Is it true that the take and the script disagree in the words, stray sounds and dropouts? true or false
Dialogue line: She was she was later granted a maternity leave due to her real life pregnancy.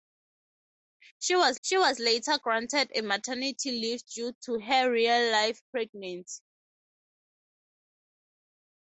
false